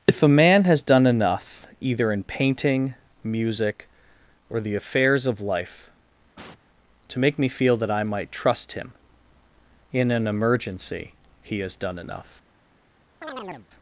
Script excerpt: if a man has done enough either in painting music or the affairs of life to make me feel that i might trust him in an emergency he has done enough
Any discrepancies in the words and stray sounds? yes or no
yes